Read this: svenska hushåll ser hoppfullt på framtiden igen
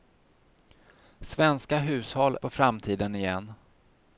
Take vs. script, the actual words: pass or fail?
fail